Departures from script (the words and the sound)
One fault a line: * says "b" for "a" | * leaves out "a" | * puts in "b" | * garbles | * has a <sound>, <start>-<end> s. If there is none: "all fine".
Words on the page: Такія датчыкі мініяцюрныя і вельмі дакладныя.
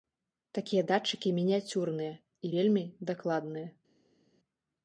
all fine